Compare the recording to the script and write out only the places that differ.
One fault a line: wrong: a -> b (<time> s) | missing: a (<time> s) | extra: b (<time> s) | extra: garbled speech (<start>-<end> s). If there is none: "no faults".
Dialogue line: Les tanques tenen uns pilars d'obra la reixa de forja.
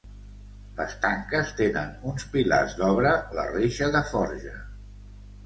no faults